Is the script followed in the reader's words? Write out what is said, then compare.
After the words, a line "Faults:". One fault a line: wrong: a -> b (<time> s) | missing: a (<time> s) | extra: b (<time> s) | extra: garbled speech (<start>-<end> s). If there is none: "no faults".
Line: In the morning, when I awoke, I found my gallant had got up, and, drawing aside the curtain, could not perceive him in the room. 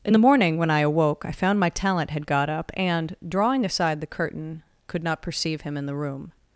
In the morning, when I awoke, I found my talent had got up, and, drawing aside the curtain, could not perceive him in the room.
Faults:
wrong: gallant -> talent (1.7 s)